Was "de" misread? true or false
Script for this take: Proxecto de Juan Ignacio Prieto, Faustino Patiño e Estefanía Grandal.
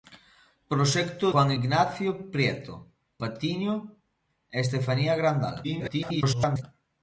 true